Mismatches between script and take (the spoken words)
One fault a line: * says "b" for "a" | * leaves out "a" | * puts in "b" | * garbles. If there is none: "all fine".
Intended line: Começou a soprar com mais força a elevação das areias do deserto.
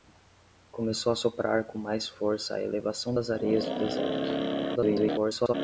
* garbles